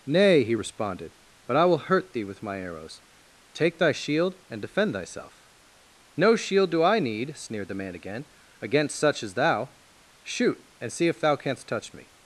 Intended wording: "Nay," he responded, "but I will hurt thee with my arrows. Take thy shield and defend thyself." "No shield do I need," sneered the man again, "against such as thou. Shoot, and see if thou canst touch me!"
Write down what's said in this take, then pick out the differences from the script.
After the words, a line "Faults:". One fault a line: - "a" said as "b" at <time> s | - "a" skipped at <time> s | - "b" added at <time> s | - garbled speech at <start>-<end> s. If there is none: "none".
"Nay," he responded, "but I will hurt thee with my arrows. Take thy shield and defend thyself." "No shield do I need," sneered the man again, "against such as thou. Shoot, and see if thou canst touch me!"
Faults:
none